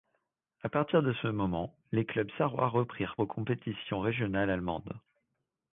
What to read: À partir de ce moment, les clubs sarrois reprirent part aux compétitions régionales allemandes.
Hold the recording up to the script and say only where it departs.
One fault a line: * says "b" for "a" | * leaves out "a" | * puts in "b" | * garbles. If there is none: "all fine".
* leaves out "part"